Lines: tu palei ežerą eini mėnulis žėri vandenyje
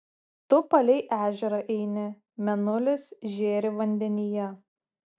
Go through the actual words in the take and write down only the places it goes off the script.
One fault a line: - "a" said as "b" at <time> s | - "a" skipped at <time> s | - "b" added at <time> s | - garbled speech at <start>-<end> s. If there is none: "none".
none